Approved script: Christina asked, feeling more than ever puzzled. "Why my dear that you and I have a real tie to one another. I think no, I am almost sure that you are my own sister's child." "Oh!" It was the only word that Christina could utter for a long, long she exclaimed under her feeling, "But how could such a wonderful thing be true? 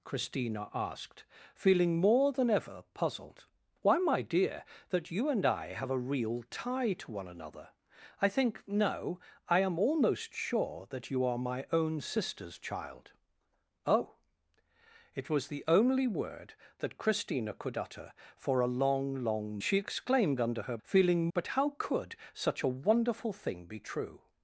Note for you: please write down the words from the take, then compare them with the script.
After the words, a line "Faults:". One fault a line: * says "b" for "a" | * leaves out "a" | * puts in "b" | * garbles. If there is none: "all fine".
Christina asked, feeling more than ever puzzled. "Why my dear that you and I have a real tie to one another. I think no, I am almost sure that you are my own sister's child." "Oh!" It was the only word that Christina could utter for a long, long she exclaimed under her feeling, "But how could such a wonderful thing be true?
Faults:
all fine